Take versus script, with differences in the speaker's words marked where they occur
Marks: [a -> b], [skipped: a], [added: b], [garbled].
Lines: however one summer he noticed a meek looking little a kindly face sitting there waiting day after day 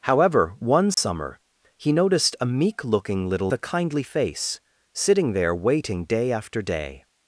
however one summer he noticed a meek looking little a kindly face sitting there waiting day after day